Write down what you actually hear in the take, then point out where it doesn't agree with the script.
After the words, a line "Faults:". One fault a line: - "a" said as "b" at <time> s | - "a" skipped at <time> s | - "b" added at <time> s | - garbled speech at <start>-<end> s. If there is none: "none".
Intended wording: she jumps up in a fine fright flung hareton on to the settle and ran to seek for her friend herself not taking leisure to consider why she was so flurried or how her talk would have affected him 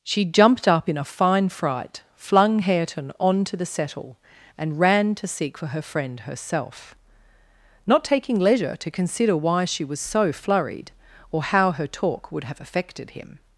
she jumped up in a fine fright flung hareton on to the settle and ran to seek for her friend herself not taking leisure to consider why she was so flurried or how her talk would have affected him
Faults:
- "jumps" said as "jumped" at 0.2 s